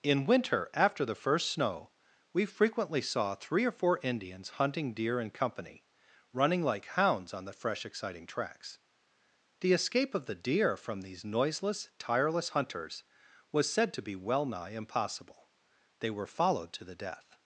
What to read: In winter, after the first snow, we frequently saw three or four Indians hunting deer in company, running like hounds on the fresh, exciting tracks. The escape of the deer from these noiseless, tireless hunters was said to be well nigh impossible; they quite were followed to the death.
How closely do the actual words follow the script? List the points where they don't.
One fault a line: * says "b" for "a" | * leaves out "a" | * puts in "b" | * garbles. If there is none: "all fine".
* leaves out "quite"